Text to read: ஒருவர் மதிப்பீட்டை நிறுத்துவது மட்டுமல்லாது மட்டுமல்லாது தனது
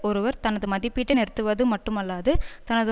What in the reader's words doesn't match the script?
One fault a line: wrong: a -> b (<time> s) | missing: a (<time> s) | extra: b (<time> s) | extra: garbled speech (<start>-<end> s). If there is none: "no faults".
extra: தனது (0.4 s)
missing: மட்டுமல்லாது (2.3 s)